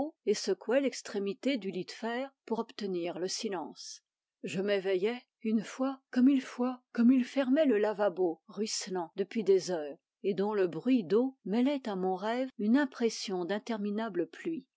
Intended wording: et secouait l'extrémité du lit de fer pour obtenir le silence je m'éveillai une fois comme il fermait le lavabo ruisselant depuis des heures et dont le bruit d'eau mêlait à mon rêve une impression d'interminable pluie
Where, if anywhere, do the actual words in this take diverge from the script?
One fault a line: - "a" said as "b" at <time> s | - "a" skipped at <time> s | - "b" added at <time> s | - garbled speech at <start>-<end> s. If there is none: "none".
- "fois comme il" added at 6.4 s